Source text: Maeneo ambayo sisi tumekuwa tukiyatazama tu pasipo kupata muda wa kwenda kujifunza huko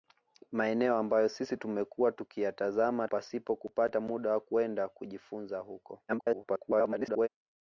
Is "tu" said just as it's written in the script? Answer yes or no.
no